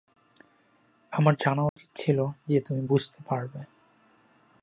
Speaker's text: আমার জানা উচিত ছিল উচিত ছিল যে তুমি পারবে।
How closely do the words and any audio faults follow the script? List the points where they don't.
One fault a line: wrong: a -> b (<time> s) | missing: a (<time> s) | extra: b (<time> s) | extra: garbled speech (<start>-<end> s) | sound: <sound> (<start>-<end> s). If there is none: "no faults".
sound: dropout (1.7-1.8 s)
missing: উচিত ছিল (2.2 s)
extra: বুঝতে (2.9 s)